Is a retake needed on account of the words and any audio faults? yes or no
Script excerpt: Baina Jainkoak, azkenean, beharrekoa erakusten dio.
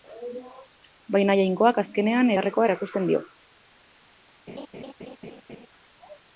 yes